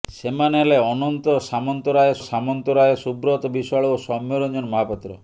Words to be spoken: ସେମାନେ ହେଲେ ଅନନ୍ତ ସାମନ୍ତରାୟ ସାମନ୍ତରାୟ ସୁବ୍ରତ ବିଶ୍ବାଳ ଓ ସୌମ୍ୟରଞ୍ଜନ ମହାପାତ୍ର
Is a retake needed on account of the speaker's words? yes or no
no